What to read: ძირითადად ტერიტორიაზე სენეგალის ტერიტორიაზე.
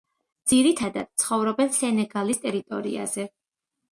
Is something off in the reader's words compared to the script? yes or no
yes